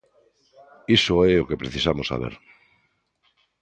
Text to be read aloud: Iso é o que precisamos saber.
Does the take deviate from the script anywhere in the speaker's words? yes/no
no